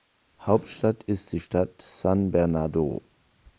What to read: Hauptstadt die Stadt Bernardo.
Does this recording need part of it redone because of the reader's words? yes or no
yes